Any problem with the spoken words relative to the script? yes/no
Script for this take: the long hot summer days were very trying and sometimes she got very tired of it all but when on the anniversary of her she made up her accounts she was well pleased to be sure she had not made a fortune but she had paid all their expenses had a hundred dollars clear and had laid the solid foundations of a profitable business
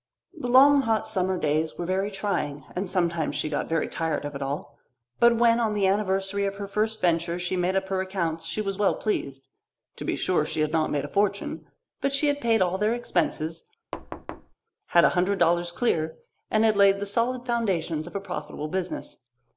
yes